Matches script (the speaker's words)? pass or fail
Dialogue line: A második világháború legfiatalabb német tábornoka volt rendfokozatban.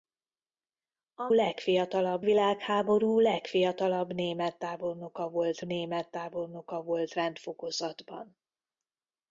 fail